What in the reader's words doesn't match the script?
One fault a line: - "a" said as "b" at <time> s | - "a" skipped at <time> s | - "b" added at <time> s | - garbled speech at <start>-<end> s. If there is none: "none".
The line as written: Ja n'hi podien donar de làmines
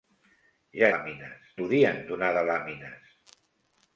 - "n'hi" said as "làmines" at 0.9 s